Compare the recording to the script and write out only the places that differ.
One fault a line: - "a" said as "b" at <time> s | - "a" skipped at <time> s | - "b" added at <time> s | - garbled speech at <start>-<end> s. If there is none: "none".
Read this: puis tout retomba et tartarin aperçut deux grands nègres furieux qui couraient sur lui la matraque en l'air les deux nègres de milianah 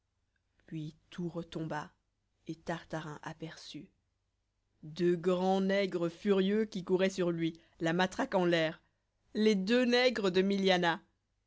none